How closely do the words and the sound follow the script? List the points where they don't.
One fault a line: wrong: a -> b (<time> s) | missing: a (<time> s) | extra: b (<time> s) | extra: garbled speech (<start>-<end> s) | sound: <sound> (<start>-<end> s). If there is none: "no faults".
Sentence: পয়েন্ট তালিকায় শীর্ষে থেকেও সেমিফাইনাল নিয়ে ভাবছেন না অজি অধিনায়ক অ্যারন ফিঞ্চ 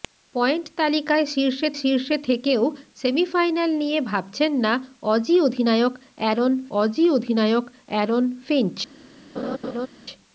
extra: শীর্ষে (1.8 s)
extra: অজি অধিনায়ক অ্যারন (6.8 s)
sound: laugh (9.4-9.9 s)